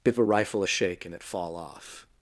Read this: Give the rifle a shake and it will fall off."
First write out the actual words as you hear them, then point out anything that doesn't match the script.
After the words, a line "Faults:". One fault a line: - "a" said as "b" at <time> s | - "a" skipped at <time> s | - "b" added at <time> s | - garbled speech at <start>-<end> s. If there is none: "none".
Give a rifle a shake and it fall off."
Faults:
- "the" said as "a" at 0.2 s
- "will" skipped at 1.2 s